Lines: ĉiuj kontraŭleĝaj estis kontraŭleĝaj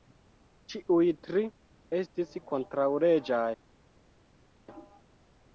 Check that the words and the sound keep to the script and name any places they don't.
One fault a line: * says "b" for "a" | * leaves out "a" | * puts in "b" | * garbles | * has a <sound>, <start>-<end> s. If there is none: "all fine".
* says "tri" for "kontraŭleĝaj"